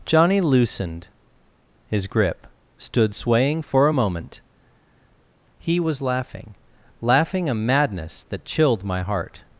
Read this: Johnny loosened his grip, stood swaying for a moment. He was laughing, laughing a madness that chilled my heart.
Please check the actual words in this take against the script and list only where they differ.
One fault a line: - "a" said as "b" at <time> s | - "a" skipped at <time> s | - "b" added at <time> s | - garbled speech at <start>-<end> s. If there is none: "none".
none